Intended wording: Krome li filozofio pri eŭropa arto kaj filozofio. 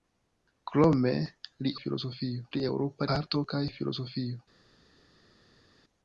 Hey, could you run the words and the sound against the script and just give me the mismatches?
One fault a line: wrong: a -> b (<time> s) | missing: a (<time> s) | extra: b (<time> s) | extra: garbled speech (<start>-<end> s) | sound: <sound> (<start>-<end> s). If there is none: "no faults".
no faults